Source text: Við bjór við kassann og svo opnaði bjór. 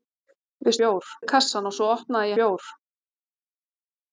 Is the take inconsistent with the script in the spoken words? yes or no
no